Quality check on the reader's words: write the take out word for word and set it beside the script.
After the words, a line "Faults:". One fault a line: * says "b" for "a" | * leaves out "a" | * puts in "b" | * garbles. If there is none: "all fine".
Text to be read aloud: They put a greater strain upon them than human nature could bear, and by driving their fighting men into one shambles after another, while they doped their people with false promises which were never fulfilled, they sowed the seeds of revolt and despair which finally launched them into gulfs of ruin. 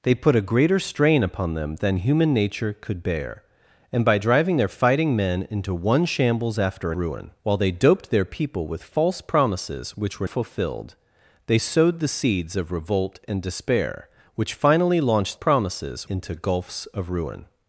They put a greater strain upon them than human nature could bear, and by driving their fighting men into one shambles after ruin, while they doped their people with false promises which were fulfilled, they sowed the seeds of revolt and despair which finally launched promises into gulfs of ruin.
Faults:
* says "ruin" for "another"
* leaves out "never"
* says "promises" for "them"